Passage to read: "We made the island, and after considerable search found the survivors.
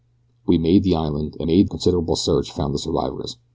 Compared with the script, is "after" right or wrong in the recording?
wrong